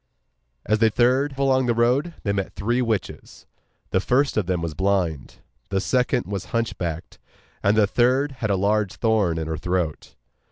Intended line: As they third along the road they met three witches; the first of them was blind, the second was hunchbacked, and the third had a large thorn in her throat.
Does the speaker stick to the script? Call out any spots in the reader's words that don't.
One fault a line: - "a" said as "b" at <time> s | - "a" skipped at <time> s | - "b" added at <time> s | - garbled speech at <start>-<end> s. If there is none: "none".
none